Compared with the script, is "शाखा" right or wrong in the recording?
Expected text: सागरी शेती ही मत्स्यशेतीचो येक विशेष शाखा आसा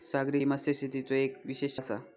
wrong